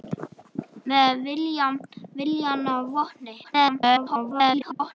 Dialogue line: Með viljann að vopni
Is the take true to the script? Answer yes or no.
no